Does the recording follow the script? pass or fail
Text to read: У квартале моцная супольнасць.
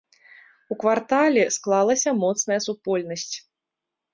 fail